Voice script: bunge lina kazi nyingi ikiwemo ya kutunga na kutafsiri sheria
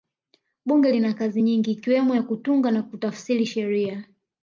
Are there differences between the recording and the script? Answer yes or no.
no